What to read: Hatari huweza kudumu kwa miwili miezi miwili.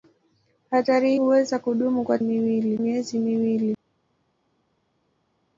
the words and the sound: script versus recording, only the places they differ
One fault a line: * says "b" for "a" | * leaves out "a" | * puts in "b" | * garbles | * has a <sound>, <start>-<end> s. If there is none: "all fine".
all fine